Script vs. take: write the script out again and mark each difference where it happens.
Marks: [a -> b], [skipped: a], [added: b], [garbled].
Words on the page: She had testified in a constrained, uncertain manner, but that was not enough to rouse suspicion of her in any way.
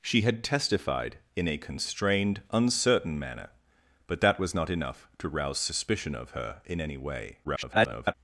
She had testified in a constrained, uncertain manner, but that was not enough to rouse suspicion of her in any way. [garbled]